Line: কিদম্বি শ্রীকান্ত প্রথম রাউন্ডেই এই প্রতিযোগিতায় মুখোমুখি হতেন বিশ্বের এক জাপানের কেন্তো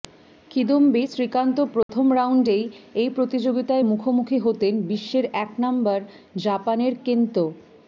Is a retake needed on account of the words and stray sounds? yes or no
yes